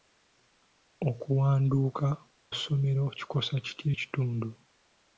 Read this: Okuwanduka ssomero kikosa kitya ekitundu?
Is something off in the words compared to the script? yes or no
no